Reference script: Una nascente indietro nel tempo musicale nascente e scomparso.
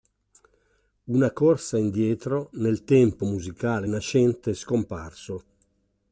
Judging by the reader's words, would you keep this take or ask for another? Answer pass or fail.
fail